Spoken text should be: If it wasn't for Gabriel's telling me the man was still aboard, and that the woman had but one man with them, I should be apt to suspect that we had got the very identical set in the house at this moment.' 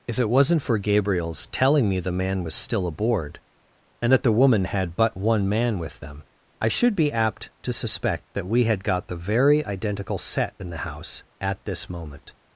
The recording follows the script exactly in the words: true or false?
true